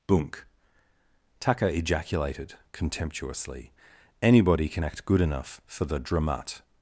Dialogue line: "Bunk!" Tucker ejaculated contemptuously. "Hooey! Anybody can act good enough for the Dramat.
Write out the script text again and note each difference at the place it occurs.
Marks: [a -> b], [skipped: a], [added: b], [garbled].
"Bunk!" Tucker ejaculated contemptuously. [skipped: "Hooey!] Anybody can act good enough for the Dramat.